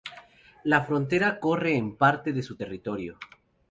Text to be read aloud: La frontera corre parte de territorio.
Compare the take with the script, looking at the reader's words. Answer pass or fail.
fail